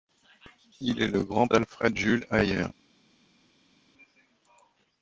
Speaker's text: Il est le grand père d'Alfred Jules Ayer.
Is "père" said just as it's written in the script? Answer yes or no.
no